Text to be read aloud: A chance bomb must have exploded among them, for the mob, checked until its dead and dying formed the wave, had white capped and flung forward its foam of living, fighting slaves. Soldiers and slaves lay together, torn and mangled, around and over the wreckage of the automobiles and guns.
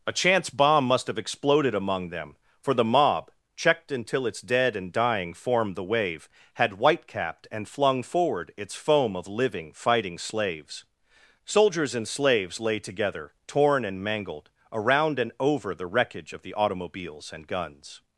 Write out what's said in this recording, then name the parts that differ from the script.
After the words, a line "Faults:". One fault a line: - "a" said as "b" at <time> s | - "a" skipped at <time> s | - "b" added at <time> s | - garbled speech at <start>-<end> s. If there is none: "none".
A chance bomb must have exploded among them, for the mob, checked until its dead and dying formed the wave, had white capped and flung forward its foam of living, fighting slaves. Soldiers and slaves lay together, torn and mangled, around and over the wreckage of the automobiles and guns.
Faults:
none